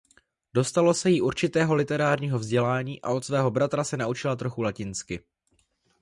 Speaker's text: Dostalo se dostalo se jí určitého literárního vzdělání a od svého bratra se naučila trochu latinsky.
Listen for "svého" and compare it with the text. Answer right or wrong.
right